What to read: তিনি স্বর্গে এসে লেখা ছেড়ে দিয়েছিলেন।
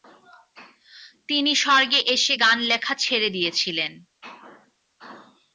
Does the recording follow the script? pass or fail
fail